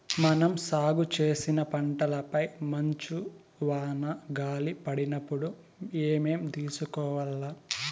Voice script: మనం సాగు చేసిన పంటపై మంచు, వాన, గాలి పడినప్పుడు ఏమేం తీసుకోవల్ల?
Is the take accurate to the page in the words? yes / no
yes